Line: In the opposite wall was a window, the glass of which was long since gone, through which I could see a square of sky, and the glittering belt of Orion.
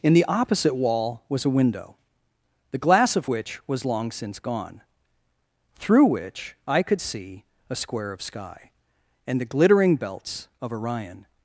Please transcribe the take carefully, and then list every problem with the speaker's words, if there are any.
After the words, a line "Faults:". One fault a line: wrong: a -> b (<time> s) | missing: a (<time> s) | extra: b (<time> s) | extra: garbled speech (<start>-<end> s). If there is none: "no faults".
In the opposite wall was a window, the glass of which was long since gone, through which I could see a square of sky, and the glittering belts of Orion.
Faults:
wrong: belt -> belts (10.0 s)